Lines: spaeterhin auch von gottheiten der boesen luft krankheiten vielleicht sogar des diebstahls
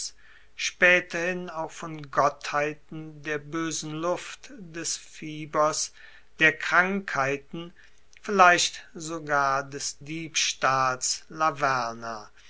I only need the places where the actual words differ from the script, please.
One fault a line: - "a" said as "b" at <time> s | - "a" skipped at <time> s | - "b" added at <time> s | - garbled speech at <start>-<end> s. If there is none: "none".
- "des fiebers der" added at 4.6 s